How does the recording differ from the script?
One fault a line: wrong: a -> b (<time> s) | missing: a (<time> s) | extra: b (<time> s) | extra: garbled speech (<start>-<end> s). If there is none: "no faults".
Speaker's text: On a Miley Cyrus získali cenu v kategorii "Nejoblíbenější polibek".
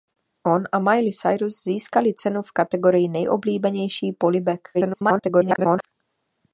extra: garbled speech (4.7-5.9 s)